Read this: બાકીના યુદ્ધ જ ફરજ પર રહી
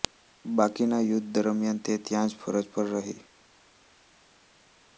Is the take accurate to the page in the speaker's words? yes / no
no